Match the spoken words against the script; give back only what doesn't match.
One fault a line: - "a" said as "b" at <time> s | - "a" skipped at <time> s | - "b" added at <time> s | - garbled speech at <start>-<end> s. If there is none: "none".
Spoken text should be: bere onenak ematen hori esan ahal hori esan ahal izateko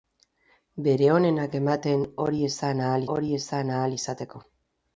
none